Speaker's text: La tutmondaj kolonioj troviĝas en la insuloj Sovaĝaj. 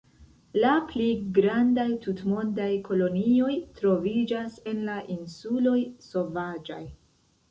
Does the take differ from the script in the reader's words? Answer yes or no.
yes